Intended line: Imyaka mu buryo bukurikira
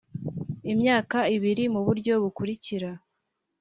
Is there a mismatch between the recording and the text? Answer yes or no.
yes